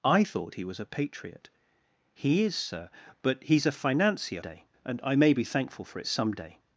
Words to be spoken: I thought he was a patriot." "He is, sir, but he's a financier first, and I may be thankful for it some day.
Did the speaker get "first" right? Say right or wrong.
wrong